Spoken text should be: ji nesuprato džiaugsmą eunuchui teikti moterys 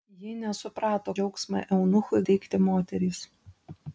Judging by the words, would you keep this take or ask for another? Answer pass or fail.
pass